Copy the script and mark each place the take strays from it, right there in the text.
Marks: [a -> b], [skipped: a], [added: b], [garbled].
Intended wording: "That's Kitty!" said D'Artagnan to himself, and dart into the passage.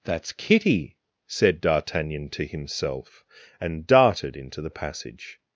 "That's Kitty!" said D'Artagnan to himself, and [dart -> darted] into the passage.